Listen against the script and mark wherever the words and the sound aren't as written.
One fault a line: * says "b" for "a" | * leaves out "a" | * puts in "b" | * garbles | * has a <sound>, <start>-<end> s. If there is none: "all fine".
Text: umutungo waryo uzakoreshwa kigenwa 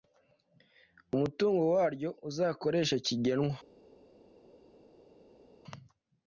all fine